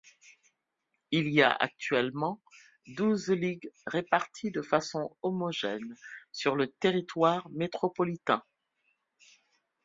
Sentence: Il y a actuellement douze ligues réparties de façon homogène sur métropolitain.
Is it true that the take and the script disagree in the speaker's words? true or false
true